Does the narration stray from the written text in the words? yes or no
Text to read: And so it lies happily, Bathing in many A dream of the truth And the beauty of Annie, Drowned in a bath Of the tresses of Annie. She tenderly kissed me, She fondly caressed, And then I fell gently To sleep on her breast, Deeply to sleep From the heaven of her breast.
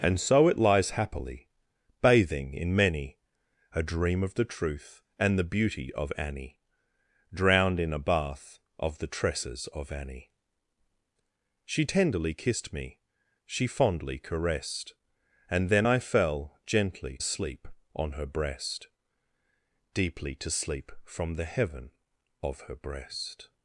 yes